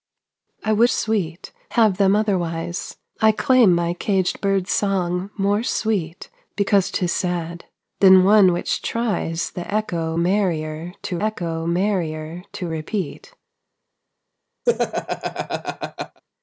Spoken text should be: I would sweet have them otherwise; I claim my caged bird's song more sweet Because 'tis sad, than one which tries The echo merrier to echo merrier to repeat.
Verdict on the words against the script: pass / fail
pass